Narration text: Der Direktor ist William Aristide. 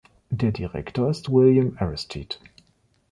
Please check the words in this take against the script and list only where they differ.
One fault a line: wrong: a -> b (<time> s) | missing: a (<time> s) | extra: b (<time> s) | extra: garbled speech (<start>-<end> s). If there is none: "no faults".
no faults